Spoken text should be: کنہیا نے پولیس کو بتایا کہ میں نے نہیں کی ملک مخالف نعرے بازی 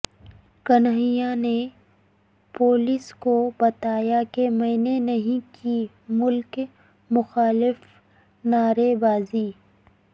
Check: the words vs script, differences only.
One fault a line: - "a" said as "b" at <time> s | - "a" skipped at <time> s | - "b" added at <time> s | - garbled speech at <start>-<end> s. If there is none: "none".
none